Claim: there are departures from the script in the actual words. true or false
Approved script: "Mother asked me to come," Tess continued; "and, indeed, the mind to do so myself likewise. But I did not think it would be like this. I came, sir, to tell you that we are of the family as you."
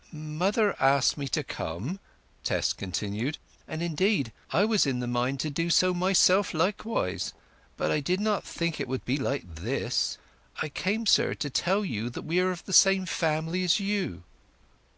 true